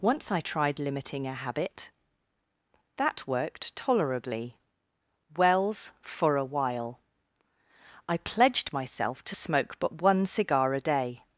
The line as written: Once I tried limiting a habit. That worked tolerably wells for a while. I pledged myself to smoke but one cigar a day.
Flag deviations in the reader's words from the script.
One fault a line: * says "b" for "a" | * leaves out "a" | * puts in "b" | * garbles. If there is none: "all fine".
all fine